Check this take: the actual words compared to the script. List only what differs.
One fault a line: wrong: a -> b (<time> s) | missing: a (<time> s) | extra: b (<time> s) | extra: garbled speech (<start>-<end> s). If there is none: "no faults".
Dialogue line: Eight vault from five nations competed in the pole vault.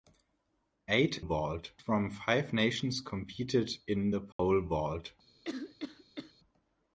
no faults